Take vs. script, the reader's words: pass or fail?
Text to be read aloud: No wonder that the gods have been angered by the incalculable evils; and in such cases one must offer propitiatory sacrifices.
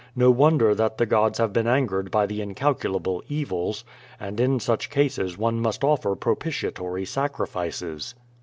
pass